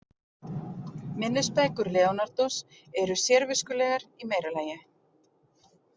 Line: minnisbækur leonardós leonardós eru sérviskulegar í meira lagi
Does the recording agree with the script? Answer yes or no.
no